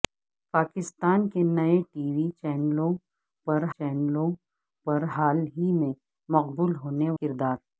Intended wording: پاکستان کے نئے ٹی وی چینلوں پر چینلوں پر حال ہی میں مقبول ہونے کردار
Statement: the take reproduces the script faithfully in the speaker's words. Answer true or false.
true